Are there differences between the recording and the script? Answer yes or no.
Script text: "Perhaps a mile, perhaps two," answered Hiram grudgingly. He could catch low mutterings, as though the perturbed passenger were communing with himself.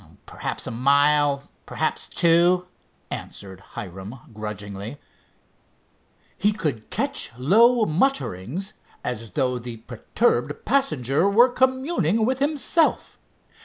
no